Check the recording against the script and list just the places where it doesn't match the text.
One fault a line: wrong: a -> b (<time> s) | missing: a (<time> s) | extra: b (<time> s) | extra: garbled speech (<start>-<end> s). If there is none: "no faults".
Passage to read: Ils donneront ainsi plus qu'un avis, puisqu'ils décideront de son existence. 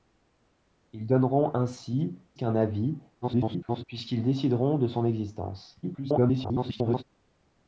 missing: plus (2.2 s)
extra: garbled speech (3.2-3.8 s)
extra: garbled speech (5.8-7.0 s)